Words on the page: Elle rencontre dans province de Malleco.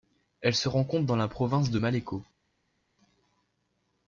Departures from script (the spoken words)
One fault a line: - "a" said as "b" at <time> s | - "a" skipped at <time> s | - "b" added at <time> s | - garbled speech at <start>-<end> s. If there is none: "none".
- "se" added at 0.6 s
- "la" added at 1.1 s